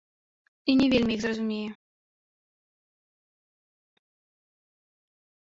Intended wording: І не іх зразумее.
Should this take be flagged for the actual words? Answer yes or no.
yes